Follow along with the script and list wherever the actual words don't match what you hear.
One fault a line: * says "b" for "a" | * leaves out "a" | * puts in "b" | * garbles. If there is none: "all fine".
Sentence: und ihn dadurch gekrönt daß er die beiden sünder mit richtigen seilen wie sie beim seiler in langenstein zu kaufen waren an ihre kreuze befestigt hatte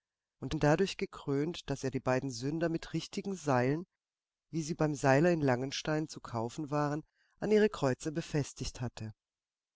all fine